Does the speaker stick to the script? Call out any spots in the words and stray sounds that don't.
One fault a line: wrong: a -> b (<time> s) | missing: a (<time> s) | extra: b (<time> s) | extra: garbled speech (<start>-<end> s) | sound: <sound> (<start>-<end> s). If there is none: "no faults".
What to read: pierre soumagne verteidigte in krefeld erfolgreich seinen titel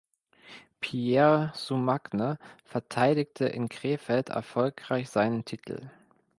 no faults